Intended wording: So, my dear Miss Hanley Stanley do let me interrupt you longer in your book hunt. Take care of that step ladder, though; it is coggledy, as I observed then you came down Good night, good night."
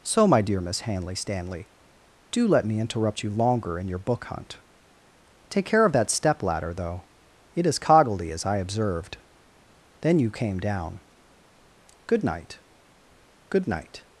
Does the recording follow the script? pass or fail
pass